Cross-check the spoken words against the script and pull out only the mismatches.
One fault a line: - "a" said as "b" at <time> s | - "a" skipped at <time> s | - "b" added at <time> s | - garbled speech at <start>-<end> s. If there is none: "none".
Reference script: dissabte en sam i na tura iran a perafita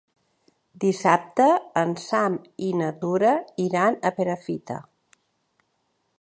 none